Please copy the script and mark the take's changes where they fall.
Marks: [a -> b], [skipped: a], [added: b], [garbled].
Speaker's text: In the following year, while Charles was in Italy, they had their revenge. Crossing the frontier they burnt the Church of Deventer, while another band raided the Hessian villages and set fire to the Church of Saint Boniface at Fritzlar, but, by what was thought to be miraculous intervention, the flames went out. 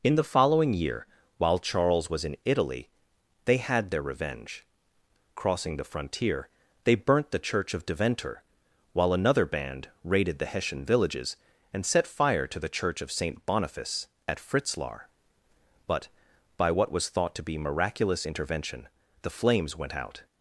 In the following year, while Charles was in Italy, they had their revenge. Crossing the frontier they burnt the Church of Deventer, while another band raided the Hessian villages and set fire to the Church of Saint Boniface at Fritzlar, but, by what was thought to be miraculous intervention, the flames went out.